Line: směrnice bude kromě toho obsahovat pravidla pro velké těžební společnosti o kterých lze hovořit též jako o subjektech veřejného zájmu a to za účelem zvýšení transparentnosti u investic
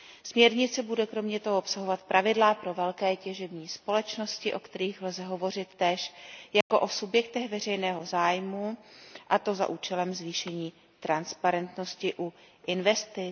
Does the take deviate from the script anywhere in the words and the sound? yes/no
yes